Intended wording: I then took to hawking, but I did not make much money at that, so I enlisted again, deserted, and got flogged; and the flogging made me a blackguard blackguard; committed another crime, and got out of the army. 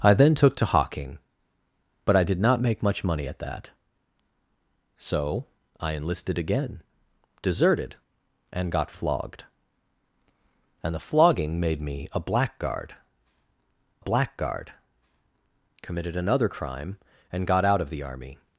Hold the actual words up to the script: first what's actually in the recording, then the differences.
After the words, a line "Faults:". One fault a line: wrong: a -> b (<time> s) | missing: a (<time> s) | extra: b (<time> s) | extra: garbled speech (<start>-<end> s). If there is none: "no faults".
I then took to hawking, but I did not make much money at that, so I enlisted again, deserted, and got flogged; and the flogging made me a blackguard blackguard; committed another crime, and got out of the army.
Faults:
no faults